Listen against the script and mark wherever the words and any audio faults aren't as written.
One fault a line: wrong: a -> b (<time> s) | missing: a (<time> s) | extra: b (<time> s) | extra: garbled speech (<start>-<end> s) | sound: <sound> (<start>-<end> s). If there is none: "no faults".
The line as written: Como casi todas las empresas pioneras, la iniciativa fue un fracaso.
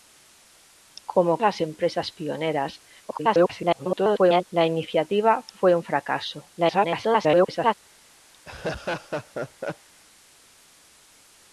missing: casi todas (1.4 s)
extra: garbled speech (3.1-4.4 s)
extra: garbled speech (6.6-7.7 s)
sound: laugh (8.3-9.9 s)